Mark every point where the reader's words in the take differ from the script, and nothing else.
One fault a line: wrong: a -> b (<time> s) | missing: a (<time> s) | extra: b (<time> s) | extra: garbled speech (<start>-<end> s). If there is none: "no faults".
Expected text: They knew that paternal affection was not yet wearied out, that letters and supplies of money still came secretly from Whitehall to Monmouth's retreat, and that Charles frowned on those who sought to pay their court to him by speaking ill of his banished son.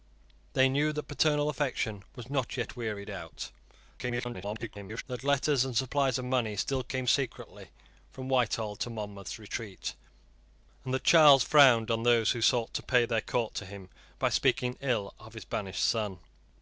extra: garbled speech (4.0-5.0 s)